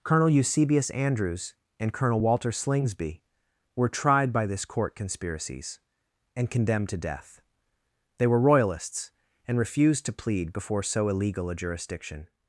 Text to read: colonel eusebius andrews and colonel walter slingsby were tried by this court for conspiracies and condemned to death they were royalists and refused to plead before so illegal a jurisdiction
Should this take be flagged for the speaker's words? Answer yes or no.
yes